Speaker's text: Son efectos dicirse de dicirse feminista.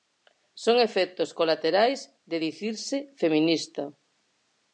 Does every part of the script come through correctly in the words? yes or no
no